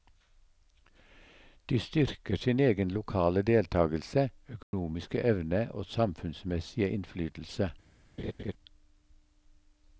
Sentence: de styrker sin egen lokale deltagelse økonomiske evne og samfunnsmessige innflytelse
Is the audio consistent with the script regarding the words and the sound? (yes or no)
no